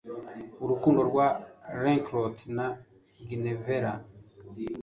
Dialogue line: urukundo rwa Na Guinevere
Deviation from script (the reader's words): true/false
true